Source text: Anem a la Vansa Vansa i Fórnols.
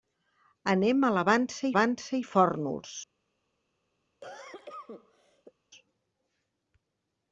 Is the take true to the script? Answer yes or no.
yes